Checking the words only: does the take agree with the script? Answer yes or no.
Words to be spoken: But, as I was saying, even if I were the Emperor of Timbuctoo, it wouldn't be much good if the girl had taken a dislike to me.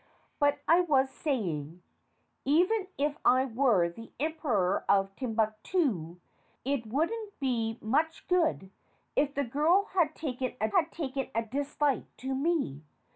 no